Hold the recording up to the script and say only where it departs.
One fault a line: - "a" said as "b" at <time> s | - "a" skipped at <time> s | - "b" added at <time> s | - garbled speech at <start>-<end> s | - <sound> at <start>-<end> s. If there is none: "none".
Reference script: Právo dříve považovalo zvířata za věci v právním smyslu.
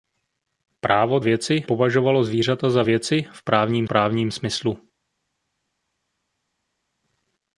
- "dříve" said as "věci" at 1.2 s
- "právním" added at 3.8 s